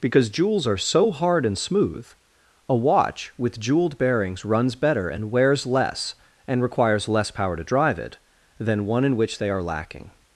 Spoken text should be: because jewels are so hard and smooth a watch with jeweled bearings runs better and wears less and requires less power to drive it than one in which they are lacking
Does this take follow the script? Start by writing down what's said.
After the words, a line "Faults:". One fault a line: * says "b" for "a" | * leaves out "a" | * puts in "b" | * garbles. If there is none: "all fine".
because jewels are so hard and smooth a watch with jeweled bearings runs better and wears less and requires less power to drive it than one in which they are lacking
Faults:
all fine